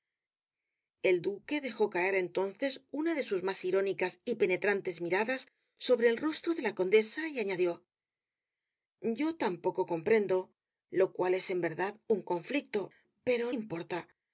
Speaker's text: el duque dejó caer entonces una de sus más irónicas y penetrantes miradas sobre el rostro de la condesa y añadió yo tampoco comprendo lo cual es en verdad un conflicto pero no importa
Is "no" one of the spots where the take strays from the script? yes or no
yes